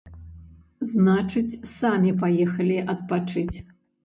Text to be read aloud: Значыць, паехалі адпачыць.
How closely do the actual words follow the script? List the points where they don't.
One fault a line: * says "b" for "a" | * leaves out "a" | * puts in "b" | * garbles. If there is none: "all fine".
* puts in "самі"